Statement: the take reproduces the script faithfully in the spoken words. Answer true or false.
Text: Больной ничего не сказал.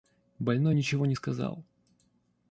true